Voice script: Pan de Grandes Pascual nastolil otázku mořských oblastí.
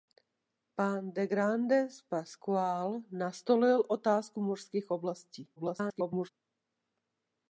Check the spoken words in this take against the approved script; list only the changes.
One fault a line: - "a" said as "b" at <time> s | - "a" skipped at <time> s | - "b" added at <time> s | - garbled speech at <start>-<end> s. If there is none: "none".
- garbled speech at 5.6-6.3 s